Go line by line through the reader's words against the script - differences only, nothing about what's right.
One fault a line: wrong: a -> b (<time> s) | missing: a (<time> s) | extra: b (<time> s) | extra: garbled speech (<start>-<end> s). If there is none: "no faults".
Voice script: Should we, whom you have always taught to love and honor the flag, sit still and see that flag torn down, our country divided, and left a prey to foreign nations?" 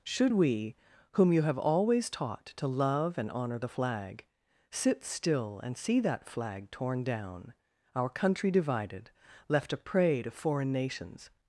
missing: and (9.1 s)